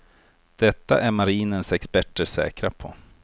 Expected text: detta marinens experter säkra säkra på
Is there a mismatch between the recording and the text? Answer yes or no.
yes